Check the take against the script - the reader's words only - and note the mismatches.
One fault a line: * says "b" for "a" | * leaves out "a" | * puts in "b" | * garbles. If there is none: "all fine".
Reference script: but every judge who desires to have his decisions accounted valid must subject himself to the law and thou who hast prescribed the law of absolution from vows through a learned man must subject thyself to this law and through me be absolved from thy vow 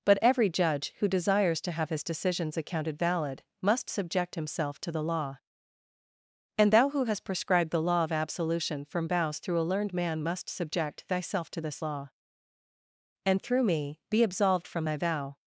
all fine